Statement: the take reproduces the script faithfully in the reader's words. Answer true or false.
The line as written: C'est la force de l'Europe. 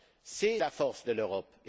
true